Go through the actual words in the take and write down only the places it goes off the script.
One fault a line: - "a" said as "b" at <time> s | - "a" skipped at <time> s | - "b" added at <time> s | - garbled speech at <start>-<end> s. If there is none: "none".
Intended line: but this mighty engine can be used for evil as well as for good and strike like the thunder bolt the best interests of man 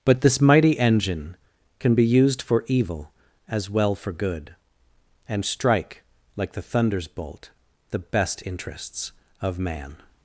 - "as" skipped at 4.0 s
- "thunder" said as "thunders" at 6.6 s